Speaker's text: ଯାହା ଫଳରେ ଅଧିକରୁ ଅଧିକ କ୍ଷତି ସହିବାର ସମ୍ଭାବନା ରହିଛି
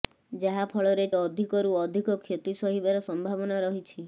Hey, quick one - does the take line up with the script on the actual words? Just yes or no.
yes